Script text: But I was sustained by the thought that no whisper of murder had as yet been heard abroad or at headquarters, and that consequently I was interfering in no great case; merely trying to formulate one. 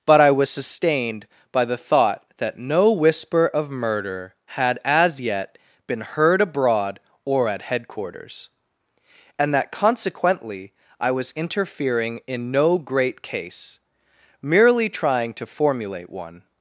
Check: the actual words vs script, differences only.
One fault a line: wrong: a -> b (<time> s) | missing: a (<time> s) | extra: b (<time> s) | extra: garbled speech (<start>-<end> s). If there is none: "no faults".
no faults